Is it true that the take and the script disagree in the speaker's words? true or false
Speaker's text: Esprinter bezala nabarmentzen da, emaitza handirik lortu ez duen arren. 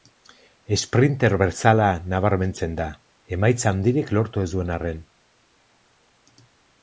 false